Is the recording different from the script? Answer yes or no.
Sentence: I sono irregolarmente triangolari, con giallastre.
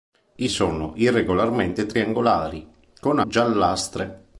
no